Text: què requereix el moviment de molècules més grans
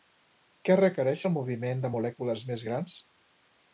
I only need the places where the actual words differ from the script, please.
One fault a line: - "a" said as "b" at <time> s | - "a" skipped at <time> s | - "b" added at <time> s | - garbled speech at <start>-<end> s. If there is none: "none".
none